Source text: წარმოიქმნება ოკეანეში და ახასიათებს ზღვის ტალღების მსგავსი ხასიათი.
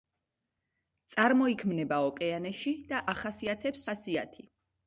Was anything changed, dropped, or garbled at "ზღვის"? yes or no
yes